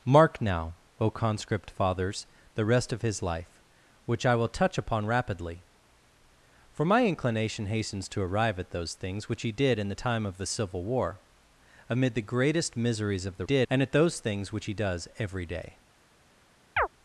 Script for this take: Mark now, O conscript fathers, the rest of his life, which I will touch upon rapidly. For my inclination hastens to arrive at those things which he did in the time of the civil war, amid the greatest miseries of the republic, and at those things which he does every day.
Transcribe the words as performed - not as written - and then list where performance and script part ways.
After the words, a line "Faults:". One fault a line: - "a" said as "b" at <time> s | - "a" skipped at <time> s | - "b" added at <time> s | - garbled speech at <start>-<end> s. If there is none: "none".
Mark now, O conscript fathers, the rest of his life, which I will touch upon rapidly. For my inclination hastens to arrive at those things which he did in the time of the civil war, amid the greatest miseries of the did, and at those things which he does every day.
Faults:
- "republic" said as "did" at 13.4 s